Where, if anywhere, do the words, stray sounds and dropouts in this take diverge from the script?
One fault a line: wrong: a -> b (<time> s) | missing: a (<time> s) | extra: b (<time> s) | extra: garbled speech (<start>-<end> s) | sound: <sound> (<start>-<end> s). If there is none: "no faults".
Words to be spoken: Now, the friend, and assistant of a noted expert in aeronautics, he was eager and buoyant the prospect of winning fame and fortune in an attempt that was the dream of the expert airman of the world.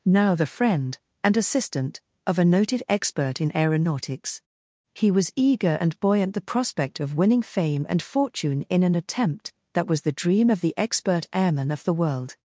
no faults